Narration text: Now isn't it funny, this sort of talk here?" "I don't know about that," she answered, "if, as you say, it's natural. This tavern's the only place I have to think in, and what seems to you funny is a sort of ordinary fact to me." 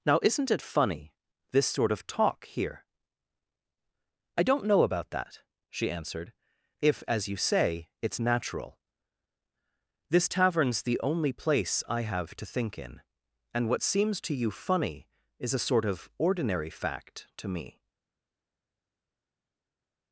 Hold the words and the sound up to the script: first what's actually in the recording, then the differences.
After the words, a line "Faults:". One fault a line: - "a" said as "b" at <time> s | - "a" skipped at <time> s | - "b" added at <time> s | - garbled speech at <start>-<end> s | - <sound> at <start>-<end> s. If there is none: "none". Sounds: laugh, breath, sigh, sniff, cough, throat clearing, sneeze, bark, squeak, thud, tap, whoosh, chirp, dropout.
Now isn't it funny, this sort of talk here?" "I don't know about that," she answered, "if, as you say, it's natural. This tavern's the only place I have to think in, and what seems to you funny is a sort of ordinary fact to me."
Faults:
none